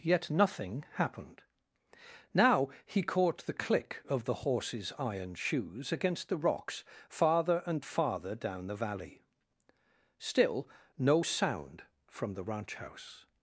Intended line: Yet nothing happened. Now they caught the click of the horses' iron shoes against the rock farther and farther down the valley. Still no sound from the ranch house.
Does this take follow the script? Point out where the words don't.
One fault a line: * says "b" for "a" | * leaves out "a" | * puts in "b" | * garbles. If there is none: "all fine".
* says "he" for "they"
* says "rocks" for "rock"